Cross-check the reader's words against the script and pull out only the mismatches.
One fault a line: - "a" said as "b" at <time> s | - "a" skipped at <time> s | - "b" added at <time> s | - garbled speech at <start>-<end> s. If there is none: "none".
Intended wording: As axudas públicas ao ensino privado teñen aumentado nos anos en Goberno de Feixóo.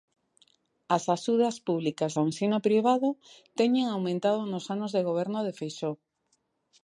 - "en" said as "de" at 4.9 s